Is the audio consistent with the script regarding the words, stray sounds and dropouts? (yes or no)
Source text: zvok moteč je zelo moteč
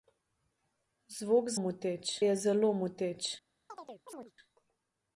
no